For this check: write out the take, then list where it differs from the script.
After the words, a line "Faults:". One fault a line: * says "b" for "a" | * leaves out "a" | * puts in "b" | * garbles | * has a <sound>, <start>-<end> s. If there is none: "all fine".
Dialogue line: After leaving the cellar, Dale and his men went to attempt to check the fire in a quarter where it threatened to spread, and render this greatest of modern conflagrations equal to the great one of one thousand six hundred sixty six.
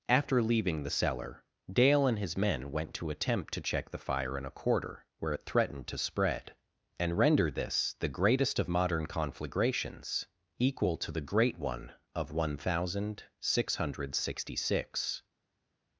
After leaving the cellar, Dale and his men went to attempt to check the fire in a quarter where it threatened to spread, and render this the greatest of modern conflagrations equal to the great one of one thousand six hundred sixty six.
Faults:
* puts in "the"